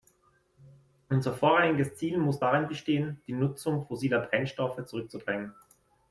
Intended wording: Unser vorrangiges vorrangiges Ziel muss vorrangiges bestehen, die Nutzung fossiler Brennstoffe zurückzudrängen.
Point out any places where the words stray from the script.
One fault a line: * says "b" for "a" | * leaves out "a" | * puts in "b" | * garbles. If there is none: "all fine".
* leaves out "vorrangiges"
* says "darin" for "vorrangiges"